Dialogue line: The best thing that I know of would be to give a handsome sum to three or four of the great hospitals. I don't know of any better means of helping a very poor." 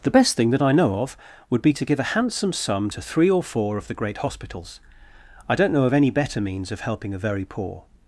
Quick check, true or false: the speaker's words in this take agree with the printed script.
true